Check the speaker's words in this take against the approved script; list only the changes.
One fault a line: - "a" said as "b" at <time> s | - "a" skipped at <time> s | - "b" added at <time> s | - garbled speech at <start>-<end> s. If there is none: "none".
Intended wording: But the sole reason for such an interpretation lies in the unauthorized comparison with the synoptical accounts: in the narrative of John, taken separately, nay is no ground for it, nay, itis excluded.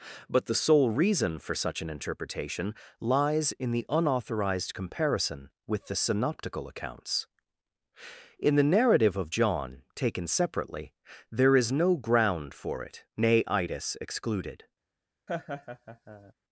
- "nay" said as "there" at 11.3 s